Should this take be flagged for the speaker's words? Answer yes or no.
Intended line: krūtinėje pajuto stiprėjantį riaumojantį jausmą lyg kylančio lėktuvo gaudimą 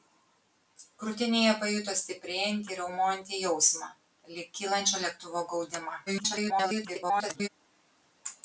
yes